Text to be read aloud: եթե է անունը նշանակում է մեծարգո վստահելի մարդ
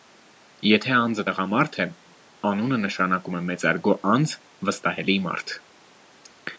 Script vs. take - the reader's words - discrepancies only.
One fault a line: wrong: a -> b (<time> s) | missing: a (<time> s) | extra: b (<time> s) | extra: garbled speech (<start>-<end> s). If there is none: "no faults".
extra: անձը տղամարդ (1.0 s)
extra: անձ (4.2 s)